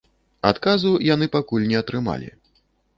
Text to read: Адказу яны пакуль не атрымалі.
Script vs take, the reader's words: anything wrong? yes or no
no